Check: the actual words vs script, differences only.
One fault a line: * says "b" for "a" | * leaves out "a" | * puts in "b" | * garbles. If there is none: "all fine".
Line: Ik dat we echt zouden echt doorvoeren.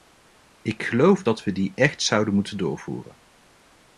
* puts in "geloof"
* puts in "die"
* says "moeten" for "echt"